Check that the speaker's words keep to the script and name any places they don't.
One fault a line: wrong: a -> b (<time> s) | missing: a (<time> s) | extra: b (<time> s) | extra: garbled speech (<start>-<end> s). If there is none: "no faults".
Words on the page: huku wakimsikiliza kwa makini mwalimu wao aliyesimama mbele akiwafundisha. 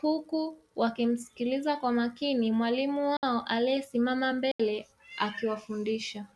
no faults